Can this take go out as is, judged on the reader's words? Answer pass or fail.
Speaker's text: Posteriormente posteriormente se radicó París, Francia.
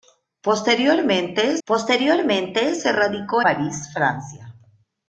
pass